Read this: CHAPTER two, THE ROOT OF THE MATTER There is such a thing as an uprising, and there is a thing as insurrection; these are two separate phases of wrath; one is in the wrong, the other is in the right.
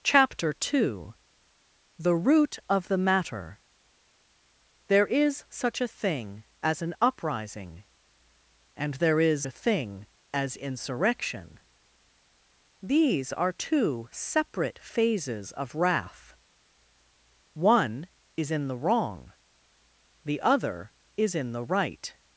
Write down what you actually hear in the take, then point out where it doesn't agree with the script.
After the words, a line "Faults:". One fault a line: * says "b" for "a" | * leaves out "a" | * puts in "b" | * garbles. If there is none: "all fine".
CHAPTER two, THE ROOT OF THE MATTER There is such a thing as an uprising, and there is a thing as insurrection; these are two separate phases of wrath; one is in the wrong, the other is in the right.
Faults:
all fine